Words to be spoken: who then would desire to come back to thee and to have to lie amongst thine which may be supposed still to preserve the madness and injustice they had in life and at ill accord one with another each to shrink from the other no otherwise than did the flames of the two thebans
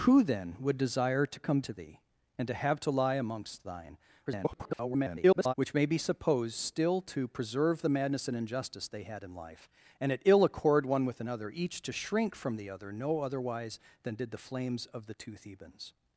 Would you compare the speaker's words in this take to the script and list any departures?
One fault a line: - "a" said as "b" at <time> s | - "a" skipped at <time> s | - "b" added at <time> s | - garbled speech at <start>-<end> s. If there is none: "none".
- "back" skipped at 1.6 s
- garbled speech at 4.3-5.5 s